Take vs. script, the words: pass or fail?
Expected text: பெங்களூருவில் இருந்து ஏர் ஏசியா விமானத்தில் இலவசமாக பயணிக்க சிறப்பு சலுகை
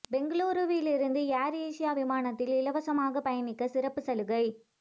pass